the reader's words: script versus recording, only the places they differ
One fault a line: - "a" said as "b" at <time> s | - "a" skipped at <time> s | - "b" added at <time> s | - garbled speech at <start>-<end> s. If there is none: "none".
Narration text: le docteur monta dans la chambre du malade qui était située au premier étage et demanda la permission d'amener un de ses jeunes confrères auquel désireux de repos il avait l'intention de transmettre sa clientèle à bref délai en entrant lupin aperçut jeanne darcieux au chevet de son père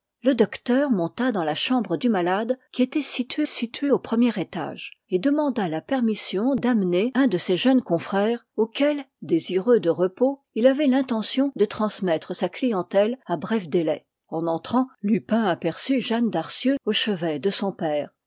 - "située" added at 3.5 s